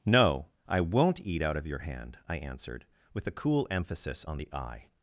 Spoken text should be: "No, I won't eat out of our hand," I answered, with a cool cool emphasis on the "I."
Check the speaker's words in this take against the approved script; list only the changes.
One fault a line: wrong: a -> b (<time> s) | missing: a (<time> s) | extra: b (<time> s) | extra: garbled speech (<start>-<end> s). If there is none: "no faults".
wrong: our -> your (1.7 s)
missing: cool (3.7 s)